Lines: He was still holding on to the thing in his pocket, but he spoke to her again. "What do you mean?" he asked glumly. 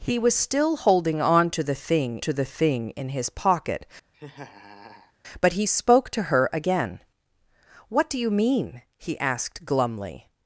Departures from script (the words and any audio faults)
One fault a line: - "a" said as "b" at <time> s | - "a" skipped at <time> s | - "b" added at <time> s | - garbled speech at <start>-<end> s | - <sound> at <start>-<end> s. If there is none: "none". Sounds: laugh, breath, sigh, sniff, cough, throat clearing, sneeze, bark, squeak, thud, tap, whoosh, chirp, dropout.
- "to the thing" added at 2.2 s
- laugh at 4.1-5.1 s